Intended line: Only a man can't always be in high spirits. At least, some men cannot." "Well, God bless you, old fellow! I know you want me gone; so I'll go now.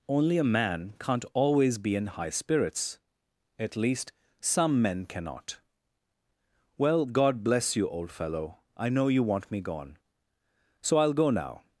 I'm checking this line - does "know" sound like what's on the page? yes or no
yes